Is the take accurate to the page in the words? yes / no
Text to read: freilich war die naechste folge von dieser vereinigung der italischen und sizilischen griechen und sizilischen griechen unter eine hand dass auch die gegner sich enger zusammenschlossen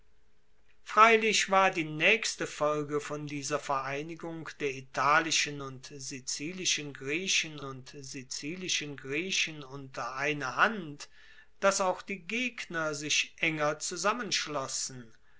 yes